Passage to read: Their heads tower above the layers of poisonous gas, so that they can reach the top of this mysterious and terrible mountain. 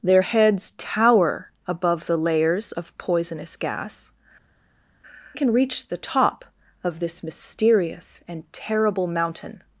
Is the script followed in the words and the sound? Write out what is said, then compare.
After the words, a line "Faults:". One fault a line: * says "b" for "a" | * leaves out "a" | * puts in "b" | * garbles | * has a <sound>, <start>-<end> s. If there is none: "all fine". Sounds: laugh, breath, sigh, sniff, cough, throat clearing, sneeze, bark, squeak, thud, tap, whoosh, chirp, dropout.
Their heads tower above the layers of poisonous gas, can reach the top of this mysterious and terrible mountain.
Faults:
* leaves out "so that they"